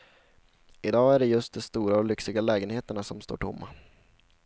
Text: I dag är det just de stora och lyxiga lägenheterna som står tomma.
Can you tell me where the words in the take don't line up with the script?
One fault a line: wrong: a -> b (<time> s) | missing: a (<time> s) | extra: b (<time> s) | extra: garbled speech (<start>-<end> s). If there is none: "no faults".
no faults